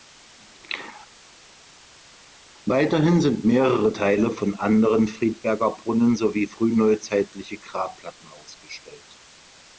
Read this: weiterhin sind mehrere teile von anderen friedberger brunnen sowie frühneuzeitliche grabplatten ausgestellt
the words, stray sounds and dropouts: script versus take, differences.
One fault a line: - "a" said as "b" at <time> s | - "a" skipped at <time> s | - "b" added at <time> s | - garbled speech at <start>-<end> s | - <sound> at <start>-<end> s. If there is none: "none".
none